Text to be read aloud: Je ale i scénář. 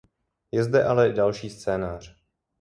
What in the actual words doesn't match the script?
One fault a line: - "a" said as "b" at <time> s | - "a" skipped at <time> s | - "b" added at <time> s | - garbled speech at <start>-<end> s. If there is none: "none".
- "zde" added at 0.6 s
- "další" added at 1.1 s